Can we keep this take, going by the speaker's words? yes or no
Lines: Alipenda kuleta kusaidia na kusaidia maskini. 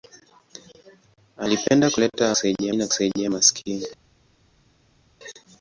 yes